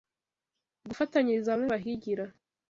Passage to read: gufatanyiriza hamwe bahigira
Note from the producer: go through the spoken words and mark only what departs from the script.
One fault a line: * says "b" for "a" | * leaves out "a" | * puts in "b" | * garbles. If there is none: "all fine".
all fine